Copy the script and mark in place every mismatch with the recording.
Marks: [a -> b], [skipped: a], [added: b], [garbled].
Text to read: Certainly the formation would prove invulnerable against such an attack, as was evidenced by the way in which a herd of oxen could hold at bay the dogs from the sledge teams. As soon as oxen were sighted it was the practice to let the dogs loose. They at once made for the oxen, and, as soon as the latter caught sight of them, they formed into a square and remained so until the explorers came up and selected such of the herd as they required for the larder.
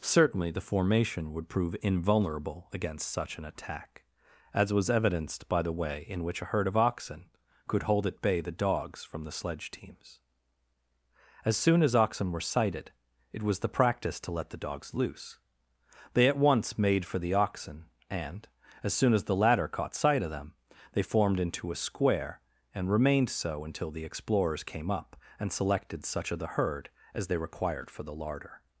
Certainly the formation would prove invulnerable against such an attack, as was evidenced by the way in which a herd of oxen could hold at bay the dogs from the sledge teams. As soon as oxen were sighted it was the practice to let the dogs loose. They at once made for the oxen, and, as soon as the latter caught sight of them, they formed into a square and remained so until the explorers came up and selected such of the herd as they required for the larder.